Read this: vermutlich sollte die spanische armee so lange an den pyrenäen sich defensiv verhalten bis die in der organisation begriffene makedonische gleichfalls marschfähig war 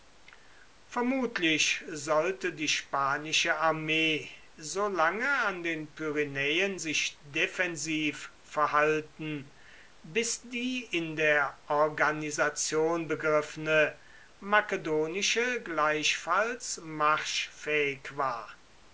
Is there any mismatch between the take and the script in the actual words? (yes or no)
no